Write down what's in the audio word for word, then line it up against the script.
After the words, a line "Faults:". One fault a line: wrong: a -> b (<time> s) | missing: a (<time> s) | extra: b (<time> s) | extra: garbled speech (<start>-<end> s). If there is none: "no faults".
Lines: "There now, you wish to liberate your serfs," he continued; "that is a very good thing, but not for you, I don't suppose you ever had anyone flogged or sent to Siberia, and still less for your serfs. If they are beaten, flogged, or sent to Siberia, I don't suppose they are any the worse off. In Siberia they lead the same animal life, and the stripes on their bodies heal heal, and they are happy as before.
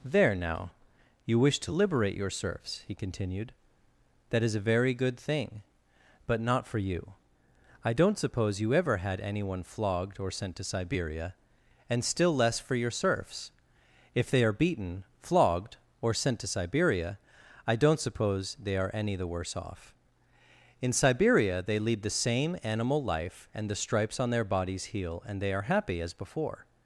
"There now, you wish to liberate your serfs," he continued; "that is a very good thing, but not for you, I don't suppose you ever had anyone flogged or sent to Siberia, and still less for your serfs. If they are beaten, flogged, or sent to Siberia, I don't suppose they are any the worse off. In Siberia they lead the same animal life, and the stripes on their bodies heal, and they are happy as before.
Faults:
missing: heal (25.2 s)